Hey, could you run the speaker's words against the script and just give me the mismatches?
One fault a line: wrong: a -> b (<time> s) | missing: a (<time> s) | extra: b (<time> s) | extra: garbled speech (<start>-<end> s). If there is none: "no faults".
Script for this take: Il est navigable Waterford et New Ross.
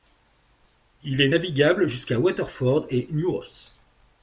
extra: jusqu'à (1.9 s)